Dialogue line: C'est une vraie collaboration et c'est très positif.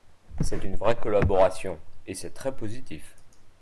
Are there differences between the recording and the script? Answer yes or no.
no